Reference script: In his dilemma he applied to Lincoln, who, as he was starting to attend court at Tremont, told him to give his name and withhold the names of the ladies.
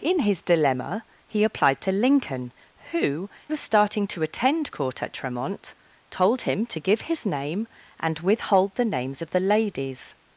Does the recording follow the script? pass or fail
fail